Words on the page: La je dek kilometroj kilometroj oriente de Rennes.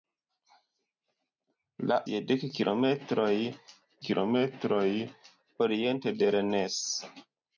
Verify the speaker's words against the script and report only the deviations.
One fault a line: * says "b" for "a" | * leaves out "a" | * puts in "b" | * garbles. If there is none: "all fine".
all fine